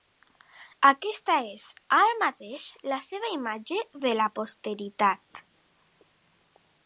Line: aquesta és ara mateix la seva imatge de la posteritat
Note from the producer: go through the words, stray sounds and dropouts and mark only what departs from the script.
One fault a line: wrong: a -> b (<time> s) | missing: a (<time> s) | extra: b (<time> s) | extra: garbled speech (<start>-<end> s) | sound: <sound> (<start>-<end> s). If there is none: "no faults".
no faults